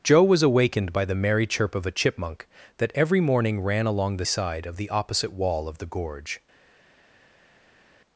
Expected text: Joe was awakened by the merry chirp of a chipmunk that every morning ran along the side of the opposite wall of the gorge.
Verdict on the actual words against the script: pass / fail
pass